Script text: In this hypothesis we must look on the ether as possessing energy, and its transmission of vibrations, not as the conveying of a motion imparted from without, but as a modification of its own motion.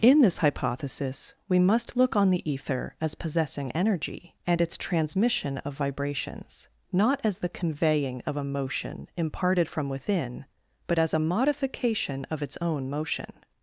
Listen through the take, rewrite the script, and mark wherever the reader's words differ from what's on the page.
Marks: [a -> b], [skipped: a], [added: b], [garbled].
In this hypothesis we must look on the ether as possessing energy, and its transmission of vibrations, not as the conveying of a motion imparted from [without, -> within] but as a modification of its own motion.